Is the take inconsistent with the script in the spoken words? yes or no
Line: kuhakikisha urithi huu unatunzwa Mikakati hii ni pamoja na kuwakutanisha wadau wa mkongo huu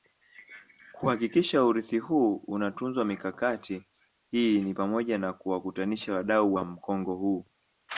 no